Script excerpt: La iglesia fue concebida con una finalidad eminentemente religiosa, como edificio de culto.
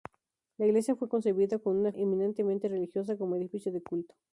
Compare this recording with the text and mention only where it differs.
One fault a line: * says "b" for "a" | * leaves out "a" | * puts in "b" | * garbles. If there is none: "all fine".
* leaves out "finalidad"